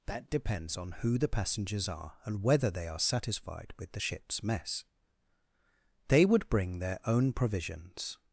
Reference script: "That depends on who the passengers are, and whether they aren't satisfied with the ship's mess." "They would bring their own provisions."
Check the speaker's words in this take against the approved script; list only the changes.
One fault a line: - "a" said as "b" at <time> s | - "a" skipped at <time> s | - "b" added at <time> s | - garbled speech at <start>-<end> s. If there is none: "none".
- "aren't" said as "are" at 2.9 s